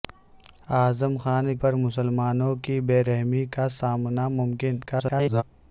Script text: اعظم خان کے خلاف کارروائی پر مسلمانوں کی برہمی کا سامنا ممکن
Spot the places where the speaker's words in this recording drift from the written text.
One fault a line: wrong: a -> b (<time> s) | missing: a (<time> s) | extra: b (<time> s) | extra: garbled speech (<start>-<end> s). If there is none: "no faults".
missing: کے خلاف کارروائی (1.6 s)
extra: garbled speech (4.9-5.4 s)